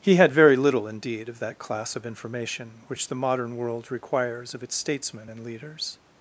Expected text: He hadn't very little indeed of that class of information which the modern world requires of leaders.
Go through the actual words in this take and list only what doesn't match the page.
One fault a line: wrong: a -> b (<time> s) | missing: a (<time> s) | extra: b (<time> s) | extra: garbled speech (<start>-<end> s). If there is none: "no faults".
wrong: hadn't -> had (0.1 s)
extra: its statesmen and (4.6 s)